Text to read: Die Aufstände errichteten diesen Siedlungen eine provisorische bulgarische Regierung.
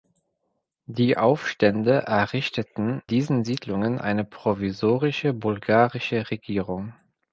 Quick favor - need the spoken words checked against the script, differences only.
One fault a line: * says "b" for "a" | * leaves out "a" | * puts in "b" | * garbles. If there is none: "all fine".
all fine